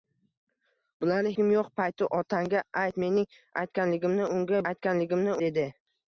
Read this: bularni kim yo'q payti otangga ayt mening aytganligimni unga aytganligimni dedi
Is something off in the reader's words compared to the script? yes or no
no